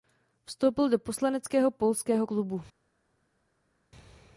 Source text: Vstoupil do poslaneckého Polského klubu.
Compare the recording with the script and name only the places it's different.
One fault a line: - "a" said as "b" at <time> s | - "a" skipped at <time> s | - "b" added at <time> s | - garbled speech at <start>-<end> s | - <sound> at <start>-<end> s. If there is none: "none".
none